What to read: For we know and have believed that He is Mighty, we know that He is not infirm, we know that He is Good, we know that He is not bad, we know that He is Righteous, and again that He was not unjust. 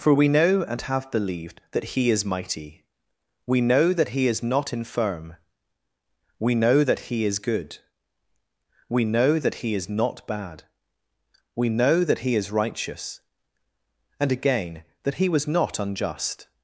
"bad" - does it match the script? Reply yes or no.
yes